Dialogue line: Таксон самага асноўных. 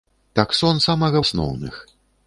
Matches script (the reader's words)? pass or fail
pass